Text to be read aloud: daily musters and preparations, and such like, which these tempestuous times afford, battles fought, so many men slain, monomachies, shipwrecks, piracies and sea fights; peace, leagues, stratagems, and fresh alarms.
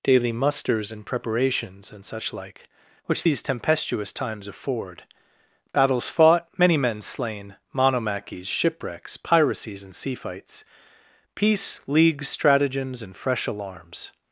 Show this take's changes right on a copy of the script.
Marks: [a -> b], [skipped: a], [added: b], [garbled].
daily musters and preparations, and such like, which these tempestuous times afford, battles fought, [skipped: so] many men slain, monomachies, shipwrecks, piracies and sea fights; peace, leagues, stratagems, and fresh alarms.